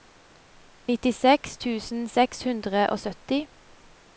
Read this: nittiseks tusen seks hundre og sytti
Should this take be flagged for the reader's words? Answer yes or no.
no